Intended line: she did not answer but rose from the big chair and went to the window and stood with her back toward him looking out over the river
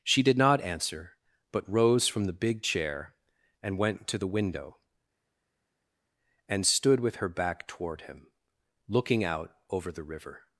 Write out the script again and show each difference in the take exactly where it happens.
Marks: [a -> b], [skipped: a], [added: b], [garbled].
she did not answer but rose from the big chair and went to the window and stood with her back toward him looking out over the river